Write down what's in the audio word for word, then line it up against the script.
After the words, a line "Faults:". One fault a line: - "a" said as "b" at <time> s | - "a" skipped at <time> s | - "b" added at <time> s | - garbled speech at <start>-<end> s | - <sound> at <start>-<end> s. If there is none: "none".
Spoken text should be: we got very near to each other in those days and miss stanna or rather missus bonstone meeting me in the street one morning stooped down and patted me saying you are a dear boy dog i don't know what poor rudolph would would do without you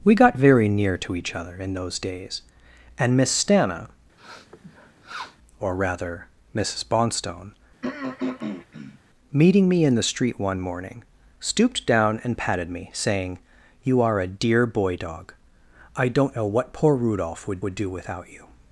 we got very near to each other in those days and miss stanna or rather missus bonstone meeting me in the street one morning stooped down and patted me saying you are a dear boy dog i don't know what poor rudolph would would do without you
Faults:
- sniff at 4.2-5.4 s
- throat clearing at 7.8-9.0 s